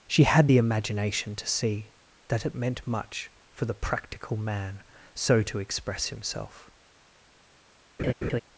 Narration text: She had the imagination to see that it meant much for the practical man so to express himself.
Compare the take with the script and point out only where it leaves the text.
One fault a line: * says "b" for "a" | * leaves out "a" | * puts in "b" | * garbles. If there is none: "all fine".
all fine